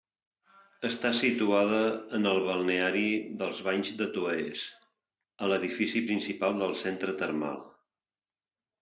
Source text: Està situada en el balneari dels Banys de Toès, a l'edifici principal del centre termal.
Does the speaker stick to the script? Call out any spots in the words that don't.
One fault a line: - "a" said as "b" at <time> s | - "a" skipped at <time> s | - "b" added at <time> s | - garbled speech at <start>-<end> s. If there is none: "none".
none